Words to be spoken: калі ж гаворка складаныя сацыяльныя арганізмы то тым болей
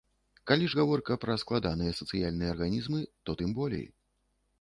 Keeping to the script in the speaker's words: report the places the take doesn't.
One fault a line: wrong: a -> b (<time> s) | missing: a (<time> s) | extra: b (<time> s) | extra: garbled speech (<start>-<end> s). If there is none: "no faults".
extra: пра (1.2 s)